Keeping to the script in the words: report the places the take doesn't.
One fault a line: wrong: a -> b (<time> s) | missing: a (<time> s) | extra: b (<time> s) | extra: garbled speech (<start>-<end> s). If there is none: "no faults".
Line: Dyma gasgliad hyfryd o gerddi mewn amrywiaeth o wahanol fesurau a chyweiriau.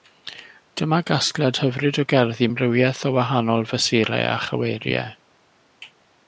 missing: mewn (2.5 s)